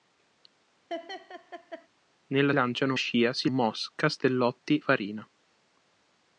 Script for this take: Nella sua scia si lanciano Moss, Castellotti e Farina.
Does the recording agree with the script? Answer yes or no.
no